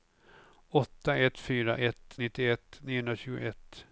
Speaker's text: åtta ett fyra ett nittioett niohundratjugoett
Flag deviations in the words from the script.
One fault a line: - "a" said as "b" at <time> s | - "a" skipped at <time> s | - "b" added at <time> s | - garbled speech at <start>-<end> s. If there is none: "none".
none